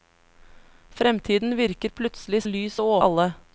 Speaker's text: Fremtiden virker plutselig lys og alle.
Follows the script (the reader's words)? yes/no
yes